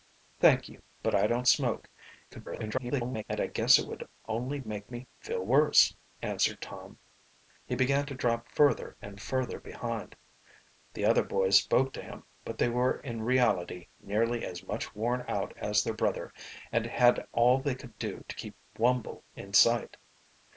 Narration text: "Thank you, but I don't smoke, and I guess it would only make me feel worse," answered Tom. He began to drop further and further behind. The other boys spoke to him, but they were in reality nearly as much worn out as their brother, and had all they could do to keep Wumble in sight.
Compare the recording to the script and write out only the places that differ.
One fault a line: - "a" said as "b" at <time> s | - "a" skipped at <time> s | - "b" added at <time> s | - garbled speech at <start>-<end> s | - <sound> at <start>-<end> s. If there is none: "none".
- garbled speech at 2.3-3.2 s